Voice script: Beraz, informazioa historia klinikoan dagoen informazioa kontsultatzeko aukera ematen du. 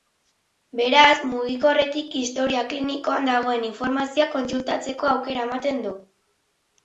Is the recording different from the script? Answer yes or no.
yes